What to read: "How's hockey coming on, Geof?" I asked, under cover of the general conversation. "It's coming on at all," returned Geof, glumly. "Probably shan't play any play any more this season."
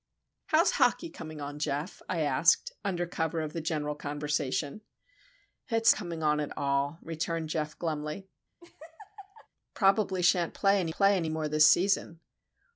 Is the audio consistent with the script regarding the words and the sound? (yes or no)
no